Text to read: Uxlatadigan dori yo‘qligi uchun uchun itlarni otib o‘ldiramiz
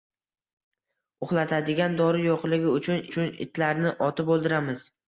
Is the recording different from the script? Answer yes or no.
no